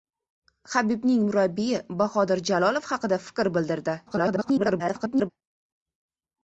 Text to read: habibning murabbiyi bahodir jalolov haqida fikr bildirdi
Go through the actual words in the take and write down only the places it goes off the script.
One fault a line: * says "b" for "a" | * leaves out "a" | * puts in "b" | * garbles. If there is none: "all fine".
* garbles